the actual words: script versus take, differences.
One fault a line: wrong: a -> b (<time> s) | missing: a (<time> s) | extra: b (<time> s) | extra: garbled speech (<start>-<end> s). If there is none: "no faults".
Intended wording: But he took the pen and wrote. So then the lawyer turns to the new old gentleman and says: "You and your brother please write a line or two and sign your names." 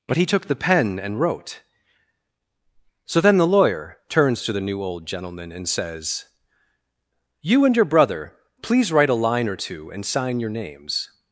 no faults